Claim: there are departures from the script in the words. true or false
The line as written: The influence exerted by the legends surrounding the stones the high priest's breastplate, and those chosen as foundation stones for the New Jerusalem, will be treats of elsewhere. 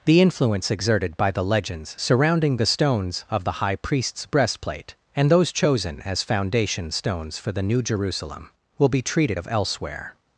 true